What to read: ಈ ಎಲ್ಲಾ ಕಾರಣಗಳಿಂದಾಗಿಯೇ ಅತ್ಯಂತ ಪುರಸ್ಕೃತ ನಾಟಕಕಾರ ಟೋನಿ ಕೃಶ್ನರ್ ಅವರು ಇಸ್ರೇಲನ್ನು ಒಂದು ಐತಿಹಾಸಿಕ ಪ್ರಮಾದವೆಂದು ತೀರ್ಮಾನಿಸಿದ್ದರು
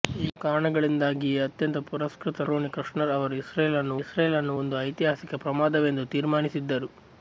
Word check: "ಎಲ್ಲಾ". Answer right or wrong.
wrong